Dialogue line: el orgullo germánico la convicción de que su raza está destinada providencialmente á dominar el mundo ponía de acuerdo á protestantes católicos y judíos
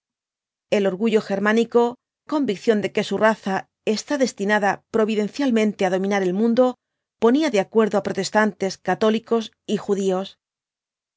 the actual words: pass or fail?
fail